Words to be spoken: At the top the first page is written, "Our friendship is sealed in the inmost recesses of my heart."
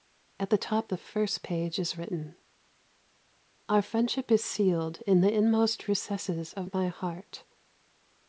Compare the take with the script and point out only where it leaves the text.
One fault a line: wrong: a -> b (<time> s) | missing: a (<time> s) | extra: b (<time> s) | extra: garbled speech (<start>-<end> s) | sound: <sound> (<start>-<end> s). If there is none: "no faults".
no faults